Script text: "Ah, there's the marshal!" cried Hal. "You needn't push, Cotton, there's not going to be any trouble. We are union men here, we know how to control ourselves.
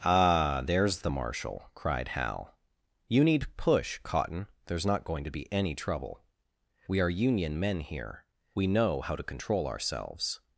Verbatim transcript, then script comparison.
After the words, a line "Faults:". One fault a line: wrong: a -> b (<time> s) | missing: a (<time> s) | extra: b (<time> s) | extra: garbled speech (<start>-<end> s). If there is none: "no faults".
"Ah, there's the marshal!" cried Hal. "You need push, Cotton, there's not going to be any trouble. We are union men here, we know how to control ourselves.
Faults:
wrong: needn't -> need (3.2 s)